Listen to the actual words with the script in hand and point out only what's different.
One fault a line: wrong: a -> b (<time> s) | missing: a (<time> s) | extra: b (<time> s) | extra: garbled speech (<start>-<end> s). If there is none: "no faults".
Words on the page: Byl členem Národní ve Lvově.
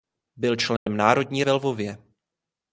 no faults